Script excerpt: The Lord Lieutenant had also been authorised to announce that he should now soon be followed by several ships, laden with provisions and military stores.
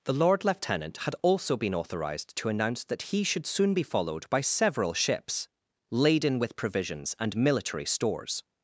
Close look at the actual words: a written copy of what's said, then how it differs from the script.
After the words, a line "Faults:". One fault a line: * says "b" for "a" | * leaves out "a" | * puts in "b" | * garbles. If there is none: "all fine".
The Lord Lieutenant had also been authorised to announce that he should soon be followed by several ships, laden with provisions and military stores.
Faults:
* leaves out "now"